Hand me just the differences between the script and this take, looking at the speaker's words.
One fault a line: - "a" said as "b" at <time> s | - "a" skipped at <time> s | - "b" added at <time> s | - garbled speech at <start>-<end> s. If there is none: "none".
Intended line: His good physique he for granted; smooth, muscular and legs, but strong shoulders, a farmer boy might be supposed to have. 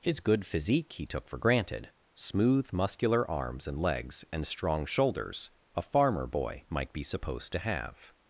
- "took" added at 1.1 s
- "arms" added at 3.3 s
- "but" said as "and" at 4.3 s